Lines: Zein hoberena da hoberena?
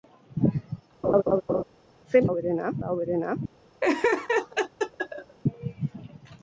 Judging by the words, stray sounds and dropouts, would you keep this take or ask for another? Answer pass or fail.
fail